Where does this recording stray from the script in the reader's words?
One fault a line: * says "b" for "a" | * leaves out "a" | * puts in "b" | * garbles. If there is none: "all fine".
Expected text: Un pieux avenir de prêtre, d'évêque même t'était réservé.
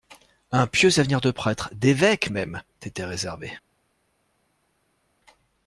all fine